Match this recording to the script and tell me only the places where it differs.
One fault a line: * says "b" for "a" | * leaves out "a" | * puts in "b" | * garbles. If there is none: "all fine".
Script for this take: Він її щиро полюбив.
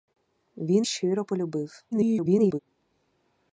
* leaves out "її"
* garbles